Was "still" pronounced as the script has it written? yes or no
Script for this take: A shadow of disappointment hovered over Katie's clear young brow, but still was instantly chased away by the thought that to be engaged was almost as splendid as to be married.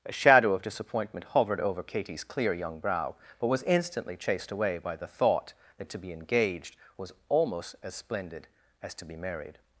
no